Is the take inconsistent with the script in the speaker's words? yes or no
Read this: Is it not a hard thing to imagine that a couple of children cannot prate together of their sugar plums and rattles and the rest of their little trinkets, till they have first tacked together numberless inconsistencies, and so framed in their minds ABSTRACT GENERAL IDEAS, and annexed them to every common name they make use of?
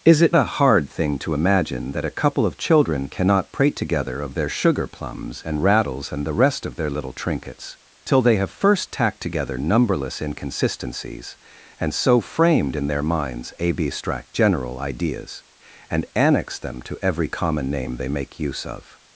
yes